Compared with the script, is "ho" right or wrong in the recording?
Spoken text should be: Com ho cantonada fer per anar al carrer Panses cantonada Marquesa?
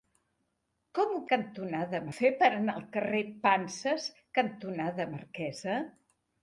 right